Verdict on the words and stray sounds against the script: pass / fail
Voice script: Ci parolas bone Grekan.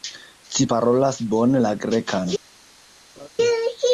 fail